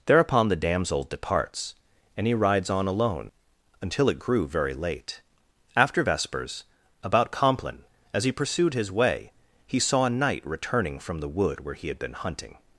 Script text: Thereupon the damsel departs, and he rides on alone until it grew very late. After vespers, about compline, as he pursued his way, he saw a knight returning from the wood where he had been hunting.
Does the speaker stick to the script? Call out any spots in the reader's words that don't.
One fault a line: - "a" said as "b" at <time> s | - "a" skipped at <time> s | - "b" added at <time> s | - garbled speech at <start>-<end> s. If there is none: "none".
none